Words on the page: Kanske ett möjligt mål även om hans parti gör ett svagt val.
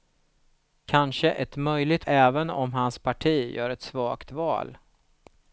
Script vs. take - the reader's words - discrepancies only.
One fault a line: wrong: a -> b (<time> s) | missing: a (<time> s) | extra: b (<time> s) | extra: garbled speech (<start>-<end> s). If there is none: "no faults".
missing: mål (2.1 s)